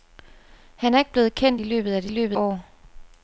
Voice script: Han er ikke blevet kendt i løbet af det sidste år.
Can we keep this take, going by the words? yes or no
no